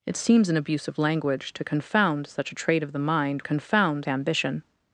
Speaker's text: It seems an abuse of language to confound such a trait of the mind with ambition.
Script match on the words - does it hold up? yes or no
no